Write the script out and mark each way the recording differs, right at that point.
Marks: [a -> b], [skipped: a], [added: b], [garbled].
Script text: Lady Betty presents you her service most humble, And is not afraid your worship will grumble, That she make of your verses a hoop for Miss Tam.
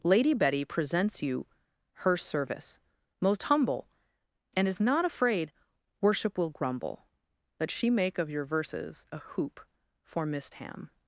Lady Betty presents you her service most humble, And is not afraid [skipped: your] worship will grumble, That she make of your verses a hoop for Miss Tam.